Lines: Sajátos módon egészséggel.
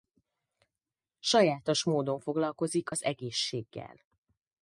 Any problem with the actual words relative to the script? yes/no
yes